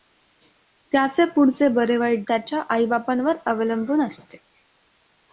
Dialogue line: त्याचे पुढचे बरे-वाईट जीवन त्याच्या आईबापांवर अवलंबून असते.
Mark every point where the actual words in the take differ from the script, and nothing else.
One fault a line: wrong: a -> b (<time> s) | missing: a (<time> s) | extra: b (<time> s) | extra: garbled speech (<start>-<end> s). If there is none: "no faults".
missing: जीवन (2.2 s)